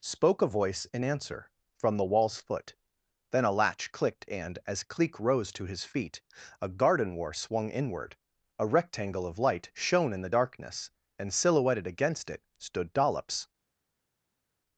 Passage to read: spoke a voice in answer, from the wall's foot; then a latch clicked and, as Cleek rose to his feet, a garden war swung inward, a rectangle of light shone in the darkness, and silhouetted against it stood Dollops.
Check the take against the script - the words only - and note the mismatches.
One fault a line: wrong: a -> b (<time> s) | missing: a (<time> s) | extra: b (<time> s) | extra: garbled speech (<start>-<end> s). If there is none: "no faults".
no faults